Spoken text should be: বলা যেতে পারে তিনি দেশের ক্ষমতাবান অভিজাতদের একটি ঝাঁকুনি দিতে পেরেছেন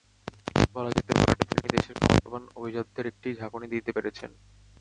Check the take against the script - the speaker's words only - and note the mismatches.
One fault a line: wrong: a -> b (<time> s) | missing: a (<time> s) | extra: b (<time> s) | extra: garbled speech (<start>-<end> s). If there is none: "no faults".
no faults